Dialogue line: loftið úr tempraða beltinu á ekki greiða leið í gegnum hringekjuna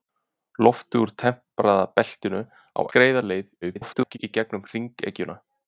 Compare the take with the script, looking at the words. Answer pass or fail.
fail